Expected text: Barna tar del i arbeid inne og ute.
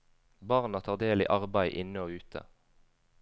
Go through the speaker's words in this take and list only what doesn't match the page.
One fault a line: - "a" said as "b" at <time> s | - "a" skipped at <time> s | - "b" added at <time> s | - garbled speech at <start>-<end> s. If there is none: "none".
none